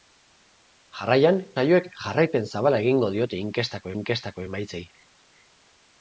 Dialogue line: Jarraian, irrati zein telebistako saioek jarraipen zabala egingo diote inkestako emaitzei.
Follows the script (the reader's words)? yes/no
no